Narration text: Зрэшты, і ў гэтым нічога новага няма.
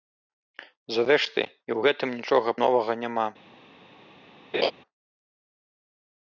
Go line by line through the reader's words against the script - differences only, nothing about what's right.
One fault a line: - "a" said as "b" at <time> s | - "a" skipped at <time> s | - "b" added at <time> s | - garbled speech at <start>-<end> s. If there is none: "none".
none